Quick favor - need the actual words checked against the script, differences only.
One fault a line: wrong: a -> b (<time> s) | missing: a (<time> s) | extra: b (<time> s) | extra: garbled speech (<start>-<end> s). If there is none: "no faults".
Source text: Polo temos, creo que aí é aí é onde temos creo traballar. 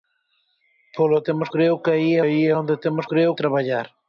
no faults